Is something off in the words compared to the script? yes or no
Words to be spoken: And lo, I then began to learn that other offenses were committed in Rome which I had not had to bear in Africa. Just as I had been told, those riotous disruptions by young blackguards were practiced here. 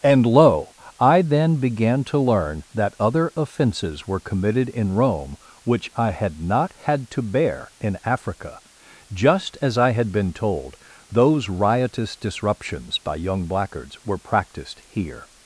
no